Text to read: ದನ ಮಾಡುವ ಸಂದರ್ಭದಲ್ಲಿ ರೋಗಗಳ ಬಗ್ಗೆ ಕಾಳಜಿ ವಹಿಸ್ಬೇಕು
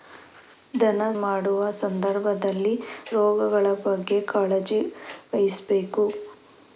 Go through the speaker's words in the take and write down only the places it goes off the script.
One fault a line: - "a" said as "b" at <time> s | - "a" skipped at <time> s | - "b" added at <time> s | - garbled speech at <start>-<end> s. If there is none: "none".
none